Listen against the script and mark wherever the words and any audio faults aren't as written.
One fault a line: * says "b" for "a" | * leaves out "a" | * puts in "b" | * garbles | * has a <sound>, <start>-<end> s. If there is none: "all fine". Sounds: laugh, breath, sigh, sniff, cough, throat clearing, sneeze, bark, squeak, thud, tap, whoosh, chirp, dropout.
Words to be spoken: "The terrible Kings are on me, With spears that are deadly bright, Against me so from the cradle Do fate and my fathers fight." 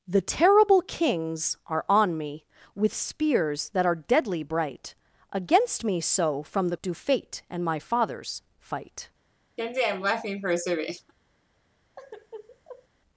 * leaves out "cradle"
* has a laugh, 9.6-11.1 s
* has a sigh, 12.0-12.9 s